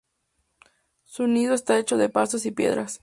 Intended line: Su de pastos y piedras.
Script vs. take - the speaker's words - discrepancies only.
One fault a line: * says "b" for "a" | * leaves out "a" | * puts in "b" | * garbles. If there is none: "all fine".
* puts in "nido está hecho"